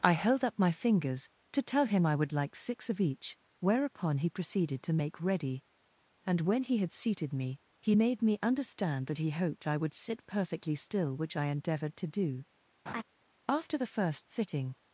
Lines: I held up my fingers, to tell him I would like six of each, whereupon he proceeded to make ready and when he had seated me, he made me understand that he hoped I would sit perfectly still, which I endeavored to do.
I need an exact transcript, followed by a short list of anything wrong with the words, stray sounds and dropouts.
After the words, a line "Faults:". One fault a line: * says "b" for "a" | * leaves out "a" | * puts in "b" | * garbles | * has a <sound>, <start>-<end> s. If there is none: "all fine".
I held up my fingers, to tell him I would like six of each, whereupon he proceeded to make ready and when he had seated me, he made me understand that he hoped I would sit perfectly still, which I endeavored to do. After the first sitting
Faults:
* has a laugh, 12.9-13.0 s
* puts in "After the first sitting"